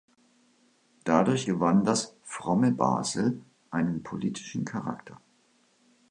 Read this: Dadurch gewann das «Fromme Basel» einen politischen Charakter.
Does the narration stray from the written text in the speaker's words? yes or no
no